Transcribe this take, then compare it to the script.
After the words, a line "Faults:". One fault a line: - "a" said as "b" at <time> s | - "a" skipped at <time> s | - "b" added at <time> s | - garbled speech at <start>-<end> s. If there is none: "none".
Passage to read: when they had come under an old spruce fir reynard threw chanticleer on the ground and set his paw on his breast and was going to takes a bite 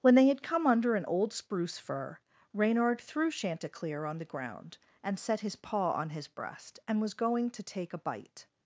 when they had come under an old spruce fir reynard threw chanticleer on the ground and set his paw on his breast and was going to take a bite
Faults:
- "takes" said as "take" at 7.6 s